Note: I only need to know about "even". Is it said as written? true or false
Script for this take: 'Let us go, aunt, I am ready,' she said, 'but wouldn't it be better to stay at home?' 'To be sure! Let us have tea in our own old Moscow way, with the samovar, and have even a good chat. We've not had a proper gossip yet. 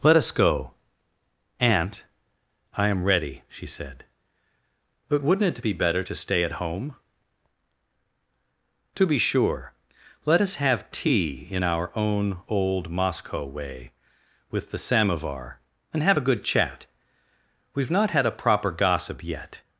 false